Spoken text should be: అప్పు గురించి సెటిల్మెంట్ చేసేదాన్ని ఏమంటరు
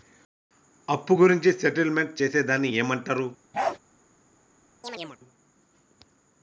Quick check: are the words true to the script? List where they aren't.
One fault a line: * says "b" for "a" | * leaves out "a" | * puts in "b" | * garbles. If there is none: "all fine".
all fine